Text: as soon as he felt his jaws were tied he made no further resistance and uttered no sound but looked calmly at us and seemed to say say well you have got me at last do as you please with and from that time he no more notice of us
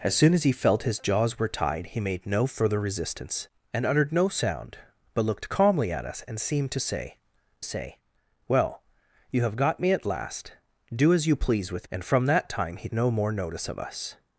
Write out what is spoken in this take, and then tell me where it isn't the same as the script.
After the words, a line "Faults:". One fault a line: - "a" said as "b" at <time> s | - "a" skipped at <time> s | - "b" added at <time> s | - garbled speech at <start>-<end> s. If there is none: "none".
as soon as he felt his jaws were tied he made no further resistance and uttered no sound but looked calmly at us and seemed to say say well you have got me at last do as you please with and from that time he no more notice of us
Faults:
none